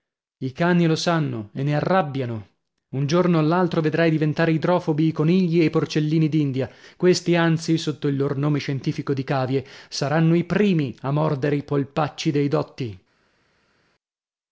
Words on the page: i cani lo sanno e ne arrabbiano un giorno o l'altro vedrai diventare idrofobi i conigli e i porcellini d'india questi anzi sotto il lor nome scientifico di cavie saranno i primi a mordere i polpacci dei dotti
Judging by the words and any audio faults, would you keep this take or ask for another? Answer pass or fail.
pass